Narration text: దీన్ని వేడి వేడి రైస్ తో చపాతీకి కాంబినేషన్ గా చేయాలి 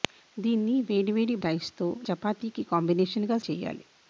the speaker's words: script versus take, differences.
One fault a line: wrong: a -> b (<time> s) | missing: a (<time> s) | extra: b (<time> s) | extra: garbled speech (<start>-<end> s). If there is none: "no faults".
no faults